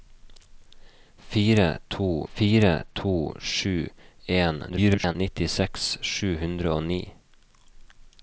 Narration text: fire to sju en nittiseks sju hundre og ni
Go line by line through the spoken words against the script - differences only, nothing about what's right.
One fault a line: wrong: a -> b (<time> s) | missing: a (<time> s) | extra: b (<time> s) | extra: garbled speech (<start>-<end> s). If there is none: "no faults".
extra: fire to (2.3 s)
extra: garbled speech (4.7-5.2 s)